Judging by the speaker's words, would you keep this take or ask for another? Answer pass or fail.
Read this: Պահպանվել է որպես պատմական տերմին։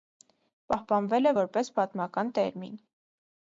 pass